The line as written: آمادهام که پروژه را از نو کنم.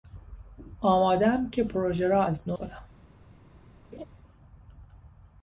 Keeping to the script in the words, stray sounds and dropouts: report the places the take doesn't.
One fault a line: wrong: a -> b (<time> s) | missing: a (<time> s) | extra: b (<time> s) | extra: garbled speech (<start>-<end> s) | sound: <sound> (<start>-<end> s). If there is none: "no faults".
sound: laugh (3.9-4.1 s)